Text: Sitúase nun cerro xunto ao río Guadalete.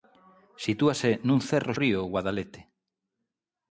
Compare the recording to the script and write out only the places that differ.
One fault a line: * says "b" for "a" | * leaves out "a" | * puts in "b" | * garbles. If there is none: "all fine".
* leaves out "xunto ao"